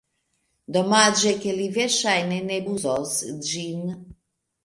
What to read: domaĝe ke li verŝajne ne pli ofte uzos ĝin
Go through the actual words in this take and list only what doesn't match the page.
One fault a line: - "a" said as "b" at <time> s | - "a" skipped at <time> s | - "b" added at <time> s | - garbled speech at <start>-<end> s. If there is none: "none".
- "pli ofte" skipped at 2.6 s